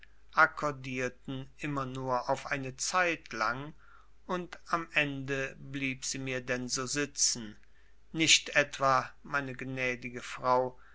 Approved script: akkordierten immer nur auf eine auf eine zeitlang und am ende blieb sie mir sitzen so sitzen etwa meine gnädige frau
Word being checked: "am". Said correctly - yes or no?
yes